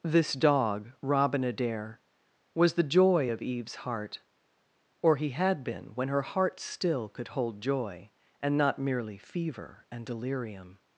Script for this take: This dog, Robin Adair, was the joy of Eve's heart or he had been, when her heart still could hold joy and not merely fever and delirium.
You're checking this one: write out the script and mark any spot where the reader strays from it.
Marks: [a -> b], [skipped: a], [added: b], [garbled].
This dog, Robin Adair, was the joy of Eve's heart or he had been, when her heart still could hold joy and not merely fever and delirium.